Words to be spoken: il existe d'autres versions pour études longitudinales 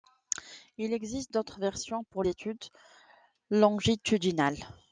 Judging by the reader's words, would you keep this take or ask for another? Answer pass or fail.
pass